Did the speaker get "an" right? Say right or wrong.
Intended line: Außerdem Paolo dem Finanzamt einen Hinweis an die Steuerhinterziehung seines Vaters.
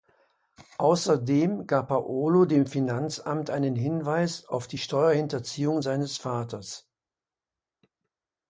wrong